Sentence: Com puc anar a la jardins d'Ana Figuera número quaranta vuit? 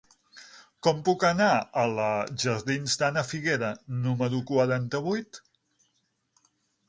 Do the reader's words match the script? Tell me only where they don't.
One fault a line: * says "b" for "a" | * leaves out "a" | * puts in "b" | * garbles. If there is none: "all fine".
all fine